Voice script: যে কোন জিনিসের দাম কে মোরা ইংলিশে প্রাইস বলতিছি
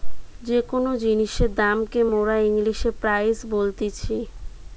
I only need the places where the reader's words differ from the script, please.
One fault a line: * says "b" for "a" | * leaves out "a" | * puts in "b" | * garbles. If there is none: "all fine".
all fine